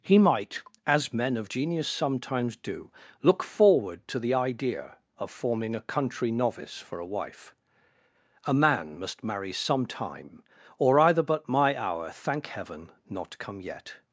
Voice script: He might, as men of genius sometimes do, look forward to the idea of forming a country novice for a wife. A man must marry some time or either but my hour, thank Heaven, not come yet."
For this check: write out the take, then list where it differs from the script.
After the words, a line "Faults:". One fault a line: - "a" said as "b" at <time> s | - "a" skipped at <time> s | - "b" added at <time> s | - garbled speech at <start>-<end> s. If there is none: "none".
He might, as men of genius sometimes do, look forward to the idea of forming a country novice for a wife. A man must marry some time or either but my hour, thank Heaven, not come yet."
Faults:
none